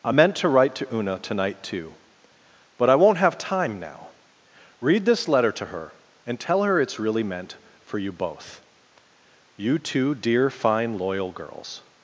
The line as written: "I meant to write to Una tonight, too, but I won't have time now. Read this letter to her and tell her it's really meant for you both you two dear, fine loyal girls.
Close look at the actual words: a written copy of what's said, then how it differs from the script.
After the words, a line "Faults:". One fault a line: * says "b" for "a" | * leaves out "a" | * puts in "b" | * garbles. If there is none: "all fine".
"I meant to write to Una tonight, too, but I won't have time now. Read this letter to her and tell her it's really meant for you both you two dear, fine loyal girls.
Faults:
all fine